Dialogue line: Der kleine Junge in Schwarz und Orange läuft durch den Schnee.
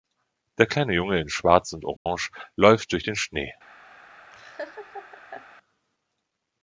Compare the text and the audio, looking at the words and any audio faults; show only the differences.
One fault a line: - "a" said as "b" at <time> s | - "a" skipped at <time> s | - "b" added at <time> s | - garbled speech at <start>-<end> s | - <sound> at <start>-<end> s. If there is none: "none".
- dropout at 2.0-2.1 s
- laugh at 4.3-5.5 s